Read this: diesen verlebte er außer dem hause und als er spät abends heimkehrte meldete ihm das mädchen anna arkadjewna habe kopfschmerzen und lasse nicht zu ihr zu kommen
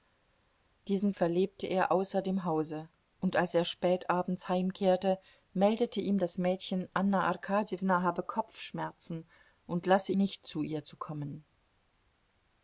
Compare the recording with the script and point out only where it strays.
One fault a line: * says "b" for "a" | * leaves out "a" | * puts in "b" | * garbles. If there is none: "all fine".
all fine